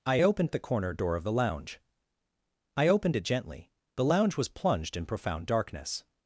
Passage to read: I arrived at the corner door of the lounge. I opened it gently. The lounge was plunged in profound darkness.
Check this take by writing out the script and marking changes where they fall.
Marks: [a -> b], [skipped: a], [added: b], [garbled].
I [arrived -> opened] at the corner door of the lounge. I opened it gently. The lounge was plunged in profound darkness.